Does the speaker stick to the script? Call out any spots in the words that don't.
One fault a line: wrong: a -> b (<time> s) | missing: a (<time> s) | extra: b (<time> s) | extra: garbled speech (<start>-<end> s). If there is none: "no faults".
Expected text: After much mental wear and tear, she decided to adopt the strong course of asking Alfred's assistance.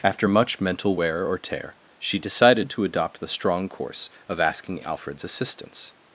wrong: and -> or (1.3 s)